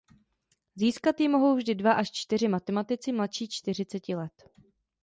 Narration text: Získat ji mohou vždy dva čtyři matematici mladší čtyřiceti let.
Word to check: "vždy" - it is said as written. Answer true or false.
true